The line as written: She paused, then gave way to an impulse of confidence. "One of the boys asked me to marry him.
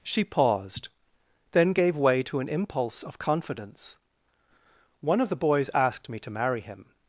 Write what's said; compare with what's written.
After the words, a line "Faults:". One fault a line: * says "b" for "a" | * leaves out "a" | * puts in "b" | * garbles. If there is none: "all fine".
She paused, then gave way to an impulse of confidence. "One of the boys asked me to marry him.
Faults:
all fine